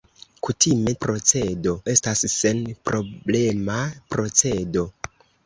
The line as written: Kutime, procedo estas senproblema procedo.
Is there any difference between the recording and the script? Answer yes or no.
no